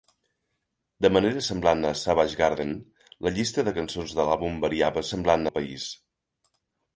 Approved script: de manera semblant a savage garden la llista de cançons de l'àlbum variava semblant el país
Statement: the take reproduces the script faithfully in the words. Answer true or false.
true